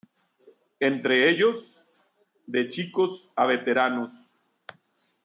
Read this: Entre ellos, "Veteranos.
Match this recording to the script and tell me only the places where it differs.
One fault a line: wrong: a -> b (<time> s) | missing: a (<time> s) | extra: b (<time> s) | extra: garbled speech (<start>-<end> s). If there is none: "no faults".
extra: De chicos a (2.5 s)